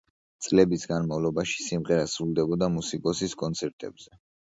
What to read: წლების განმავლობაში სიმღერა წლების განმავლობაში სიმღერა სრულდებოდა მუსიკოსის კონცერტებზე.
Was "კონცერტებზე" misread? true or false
false